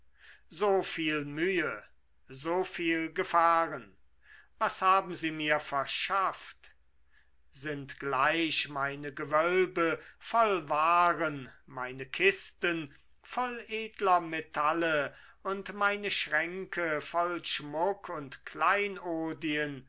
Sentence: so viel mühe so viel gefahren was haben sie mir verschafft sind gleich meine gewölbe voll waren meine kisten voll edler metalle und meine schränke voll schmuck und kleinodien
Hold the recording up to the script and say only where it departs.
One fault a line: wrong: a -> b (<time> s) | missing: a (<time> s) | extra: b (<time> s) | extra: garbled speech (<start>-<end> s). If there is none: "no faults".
no faults